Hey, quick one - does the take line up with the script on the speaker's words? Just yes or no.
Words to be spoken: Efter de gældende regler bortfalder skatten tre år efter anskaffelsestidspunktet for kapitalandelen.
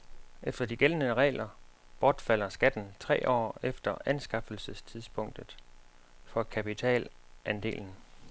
yes